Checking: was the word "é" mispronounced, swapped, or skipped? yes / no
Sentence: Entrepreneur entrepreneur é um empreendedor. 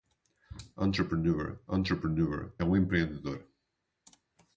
no